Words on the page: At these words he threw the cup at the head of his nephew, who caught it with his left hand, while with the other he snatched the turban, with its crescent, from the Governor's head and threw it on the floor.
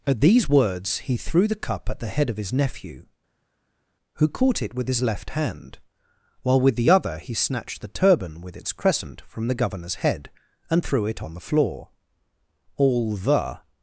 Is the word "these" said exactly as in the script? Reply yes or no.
yes